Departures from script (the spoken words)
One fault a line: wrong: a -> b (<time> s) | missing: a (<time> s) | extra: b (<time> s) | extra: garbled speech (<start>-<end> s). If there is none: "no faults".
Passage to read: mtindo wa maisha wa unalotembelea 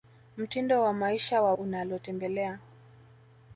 no faults